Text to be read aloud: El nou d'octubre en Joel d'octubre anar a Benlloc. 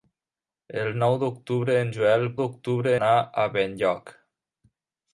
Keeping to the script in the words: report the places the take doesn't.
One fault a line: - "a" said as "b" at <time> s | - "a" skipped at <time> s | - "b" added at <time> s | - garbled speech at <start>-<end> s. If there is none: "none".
none